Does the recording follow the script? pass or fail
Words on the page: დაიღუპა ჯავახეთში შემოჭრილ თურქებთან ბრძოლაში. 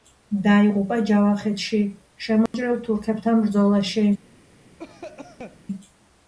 pass